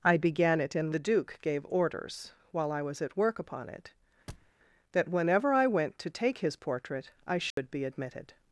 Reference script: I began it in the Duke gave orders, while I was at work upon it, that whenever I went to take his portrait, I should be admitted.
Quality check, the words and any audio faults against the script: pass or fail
fail